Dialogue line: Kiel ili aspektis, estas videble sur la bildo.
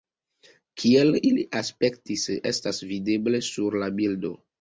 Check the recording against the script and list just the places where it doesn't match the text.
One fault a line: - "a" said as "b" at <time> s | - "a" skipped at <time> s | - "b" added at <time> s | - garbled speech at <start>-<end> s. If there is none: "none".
none